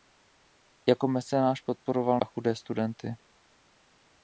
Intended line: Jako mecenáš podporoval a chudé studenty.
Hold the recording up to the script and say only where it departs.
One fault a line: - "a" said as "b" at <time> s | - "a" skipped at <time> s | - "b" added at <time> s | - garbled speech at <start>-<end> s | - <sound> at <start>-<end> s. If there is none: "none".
none